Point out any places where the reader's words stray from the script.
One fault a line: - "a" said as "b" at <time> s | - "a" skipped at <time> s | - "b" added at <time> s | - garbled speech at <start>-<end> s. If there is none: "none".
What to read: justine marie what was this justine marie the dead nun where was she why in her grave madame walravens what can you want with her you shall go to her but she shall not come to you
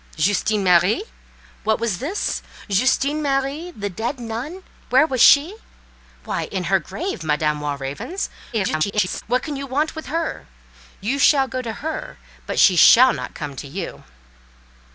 - garbled speech at 8.5-9.2 s